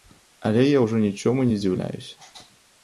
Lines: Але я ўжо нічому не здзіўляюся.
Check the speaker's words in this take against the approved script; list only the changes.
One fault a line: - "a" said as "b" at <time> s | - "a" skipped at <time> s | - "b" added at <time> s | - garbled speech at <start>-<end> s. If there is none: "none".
none